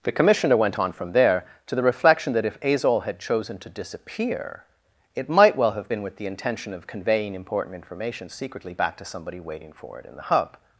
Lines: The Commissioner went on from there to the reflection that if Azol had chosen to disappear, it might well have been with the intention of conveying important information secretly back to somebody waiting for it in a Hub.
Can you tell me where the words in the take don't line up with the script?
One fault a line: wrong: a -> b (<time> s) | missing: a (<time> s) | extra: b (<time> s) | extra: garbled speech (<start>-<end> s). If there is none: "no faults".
wrong: a -> the (10.1 s)